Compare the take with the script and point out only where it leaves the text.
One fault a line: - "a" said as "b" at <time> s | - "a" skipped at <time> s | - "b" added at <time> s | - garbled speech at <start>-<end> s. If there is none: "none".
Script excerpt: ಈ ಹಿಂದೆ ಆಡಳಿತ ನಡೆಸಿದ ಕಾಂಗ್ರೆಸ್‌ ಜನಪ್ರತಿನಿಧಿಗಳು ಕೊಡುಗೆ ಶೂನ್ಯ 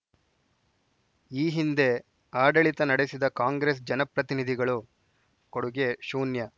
none